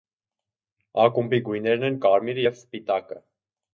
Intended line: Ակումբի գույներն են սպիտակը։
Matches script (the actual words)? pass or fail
fail